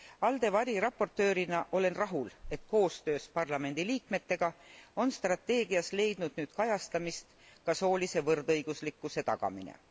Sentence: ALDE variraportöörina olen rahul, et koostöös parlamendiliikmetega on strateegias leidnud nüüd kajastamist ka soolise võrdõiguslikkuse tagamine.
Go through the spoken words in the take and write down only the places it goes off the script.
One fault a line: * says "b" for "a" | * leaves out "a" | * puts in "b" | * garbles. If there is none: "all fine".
all fine